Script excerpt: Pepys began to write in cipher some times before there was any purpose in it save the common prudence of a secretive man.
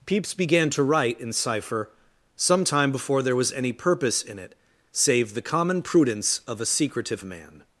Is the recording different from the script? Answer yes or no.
yes